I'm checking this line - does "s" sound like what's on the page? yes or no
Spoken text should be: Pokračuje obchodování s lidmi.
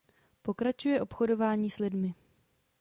yes